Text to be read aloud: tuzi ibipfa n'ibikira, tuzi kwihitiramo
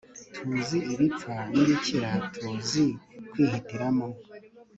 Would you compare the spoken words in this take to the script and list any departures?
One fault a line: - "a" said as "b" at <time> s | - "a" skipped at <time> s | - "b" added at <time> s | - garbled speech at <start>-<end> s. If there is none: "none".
none